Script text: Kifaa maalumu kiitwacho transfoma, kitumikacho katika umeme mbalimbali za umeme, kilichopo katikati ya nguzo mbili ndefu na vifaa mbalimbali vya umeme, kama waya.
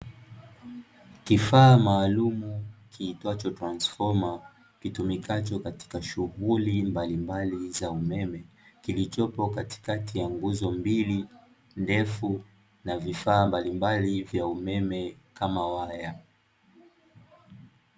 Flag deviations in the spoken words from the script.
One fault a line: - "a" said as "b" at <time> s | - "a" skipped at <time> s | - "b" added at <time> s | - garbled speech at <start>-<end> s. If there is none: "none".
- "umeme" said as "shughuli" at 6.0 s